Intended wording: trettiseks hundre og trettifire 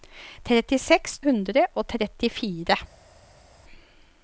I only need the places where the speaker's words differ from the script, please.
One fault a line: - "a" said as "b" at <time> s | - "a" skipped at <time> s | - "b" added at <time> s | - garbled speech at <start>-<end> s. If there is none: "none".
none